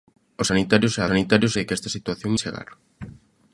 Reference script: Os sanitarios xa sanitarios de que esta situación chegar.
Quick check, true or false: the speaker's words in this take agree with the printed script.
true